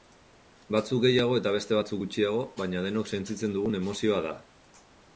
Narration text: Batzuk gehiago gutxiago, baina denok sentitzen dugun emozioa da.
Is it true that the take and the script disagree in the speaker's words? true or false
true